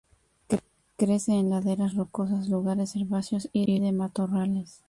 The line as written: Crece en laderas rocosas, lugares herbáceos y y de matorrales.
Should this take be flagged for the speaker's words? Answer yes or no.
no